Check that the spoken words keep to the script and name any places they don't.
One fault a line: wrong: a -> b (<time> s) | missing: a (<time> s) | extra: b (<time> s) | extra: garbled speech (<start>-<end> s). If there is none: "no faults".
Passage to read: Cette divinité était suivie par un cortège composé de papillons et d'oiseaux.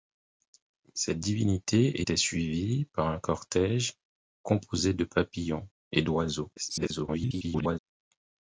extra: garbled speech (6.6-7.8 s)